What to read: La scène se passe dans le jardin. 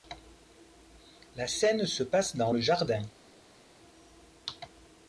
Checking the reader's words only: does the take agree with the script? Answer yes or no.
yes